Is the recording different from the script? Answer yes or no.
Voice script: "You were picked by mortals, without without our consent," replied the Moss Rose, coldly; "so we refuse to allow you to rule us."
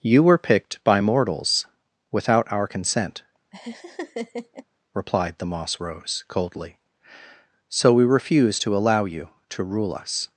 yes